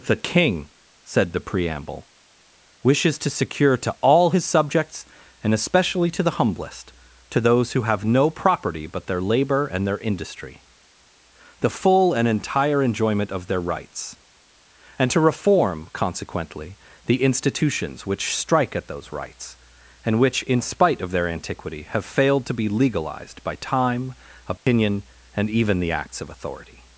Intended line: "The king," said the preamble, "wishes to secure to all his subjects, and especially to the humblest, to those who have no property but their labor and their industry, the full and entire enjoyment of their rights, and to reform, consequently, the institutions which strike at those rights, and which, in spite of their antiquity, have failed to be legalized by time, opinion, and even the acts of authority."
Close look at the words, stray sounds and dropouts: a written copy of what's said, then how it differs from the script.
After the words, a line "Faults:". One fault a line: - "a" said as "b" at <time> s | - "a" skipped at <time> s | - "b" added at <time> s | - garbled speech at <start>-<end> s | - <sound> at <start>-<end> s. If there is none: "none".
"The king," said the preamble, "wishes to secure to all his subjects, and especially to the humblest, to those who have no property but their labor and their industry, the full and entire enjoyment of their rights, and to reform, consequently, the institutions which strike at those rights, and which, in spite of their antiquity, have failed to be legalized by time, opinion, and even the acts of authority."
Faults:
- dropout at 24.6-24.7 s